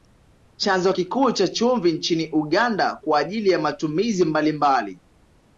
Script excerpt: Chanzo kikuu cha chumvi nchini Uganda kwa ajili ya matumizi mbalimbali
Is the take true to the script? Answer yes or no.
yes